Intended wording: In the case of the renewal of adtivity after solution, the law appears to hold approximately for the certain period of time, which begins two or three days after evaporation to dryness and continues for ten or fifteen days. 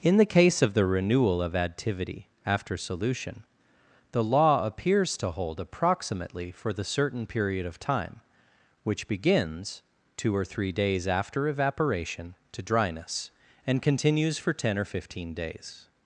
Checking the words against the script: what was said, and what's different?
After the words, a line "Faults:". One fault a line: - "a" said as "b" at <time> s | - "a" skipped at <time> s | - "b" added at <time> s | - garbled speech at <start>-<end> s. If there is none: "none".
In the case of the renewal of adtivity after solution, the law appears to hold approximately for the certain period of time, which begins two or three days after evaporation to dryness and continues for ten or fifteen days.
Faults:
none